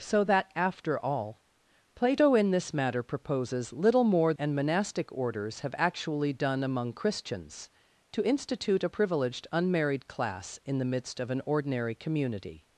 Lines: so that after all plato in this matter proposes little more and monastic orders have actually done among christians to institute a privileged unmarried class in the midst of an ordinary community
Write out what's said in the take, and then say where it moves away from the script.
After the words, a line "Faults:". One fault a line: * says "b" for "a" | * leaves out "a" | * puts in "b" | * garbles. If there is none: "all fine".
so that after all plato in this matter proposes little more and monastic orders have actually done among christians to institute a privileged unmarried class in the midst of an ordinary community
Faults:
all fine